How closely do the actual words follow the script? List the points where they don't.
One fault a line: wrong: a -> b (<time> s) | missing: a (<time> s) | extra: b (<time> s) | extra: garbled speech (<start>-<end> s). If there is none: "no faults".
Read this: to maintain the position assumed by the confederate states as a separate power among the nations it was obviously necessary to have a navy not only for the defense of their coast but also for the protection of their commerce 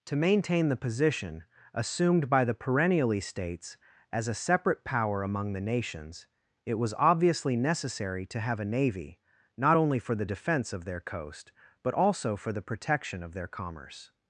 wrong: confederate -> perennially (2.5 s)